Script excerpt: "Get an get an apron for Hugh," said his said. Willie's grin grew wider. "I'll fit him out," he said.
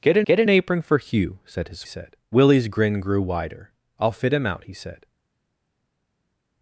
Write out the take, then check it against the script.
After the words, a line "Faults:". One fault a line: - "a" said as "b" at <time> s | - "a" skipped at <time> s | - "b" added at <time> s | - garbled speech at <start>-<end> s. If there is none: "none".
"Get an get an apron for Hugh," said his said. Willie's grin grew wider. "I'll fit him out," he said.
Faults:
none